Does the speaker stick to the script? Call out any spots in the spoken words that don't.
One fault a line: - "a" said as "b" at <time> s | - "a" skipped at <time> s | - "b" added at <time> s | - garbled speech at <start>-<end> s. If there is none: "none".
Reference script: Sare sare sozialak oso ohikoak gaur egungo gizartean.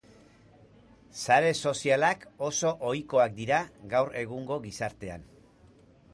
- "sare" skipped at 1.5 s
- "dira" added at 3.4 s